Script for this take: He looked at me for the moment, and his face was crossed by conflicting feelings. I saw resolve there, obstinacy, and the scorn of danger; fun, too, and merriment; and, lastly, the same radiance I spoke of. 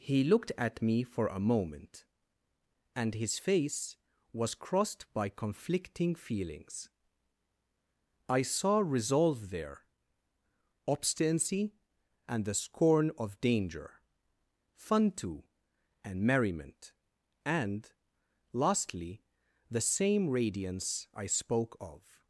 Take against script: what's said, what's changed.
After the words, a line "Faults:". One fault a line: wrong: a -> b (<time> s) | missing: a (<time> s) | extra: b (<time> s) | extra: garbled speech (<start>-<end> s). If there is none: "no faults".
He looked at me for a moment, and his face was crossed by conflicting feelings. I saw resolve there, obstinacy, and the scorn of danger; fun, too, and merriment; and, lastly, the same radiance I spoke of.
Faults:
wrong: the -> a (1.3 s)